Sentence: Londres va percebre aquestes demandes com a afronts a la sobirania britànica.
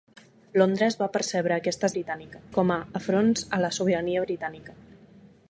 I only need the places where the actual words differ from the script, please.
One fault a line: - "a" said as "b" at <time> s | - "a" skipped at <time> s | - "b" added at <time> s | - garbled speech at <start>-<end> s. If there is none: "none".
- "demandes" said as "britànica" at 1.9 s